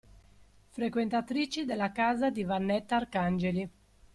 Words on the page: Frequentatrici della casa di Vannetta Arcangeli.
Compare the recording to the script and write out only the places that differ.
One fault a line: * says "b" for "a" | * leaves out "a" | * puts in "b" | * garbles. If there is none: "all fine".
all fine